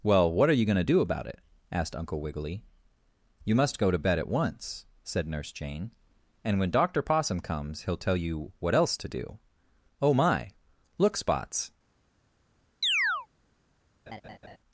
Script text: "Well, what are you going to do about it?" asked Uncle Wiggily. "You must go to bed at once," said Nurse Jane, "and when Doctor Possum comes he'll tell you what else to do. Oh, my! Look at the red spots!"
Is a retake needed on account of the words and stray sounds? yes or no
yes